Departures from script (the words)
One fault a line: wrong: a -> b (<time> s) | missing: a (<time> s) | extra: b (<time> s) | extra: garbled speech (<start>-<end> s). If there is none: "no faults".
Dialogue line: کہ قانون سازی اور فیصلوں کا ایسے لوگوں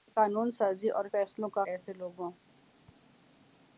no faults